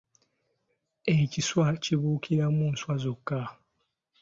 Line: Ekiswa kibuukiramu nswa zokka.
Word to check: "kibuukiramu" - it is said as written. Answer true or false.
true